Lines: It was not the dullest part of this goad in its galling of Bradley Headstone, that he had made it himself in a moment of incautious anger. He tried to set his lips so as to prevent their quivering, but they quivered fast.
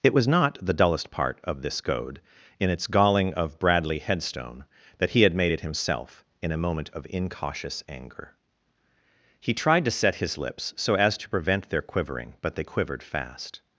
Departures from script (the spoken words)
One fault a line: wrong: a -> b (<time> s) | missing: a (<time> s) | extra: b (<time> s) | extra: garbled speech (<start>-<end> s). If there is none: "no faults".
no faults